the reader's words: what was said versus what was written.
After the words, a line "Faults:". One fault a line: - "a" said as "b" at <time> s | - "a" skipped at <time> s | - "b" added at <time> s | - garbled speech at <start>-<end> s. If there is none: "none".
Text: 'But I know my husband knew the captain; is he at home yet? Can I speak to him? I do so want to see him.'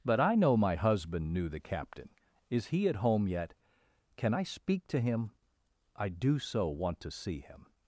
'But I know my husband knew the captain; is he at home yet? Can I speak to him? I do so want to see him.'
Faults:
none